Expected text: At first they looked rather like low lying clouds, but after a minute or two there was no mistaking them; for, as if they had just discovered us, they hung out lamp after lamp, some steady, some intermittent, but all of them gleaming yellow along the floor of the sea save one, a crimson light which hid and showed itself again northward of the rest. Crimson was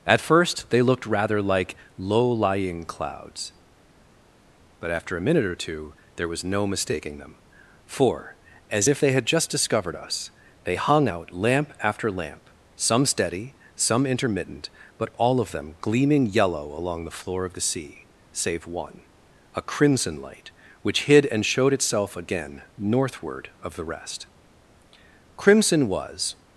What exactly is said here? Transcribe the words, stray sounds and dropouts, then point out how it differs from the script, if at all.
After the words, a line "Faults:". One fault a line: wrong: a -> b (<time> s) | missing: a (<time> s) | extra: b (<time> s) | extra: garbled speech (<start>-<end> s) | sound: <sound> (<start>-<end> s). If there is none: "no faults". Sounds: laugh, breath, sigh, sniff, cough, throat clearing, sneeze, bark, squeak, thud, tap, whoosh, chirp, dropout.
At first they looked rather like low lying clouds, but after a minute or two there was no mistaking them; for, as if they had just discovered us, they hung out lamp after lamp, some steady, some intermittent, but all of them gleaming yellow along the floor of the sea save one, a crimson light which hid and showed itself again northward of the rest. Crimson was
Faults:
no faults